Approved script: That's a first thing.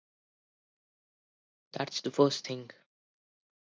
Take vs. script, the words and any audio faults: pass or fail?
fail